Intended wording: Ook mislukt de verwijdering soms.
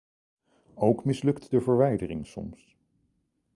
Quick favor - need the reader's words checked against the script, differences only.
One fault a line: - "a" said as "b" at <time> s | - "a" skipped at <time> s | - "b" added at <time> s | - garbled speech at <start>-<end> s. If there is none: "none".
none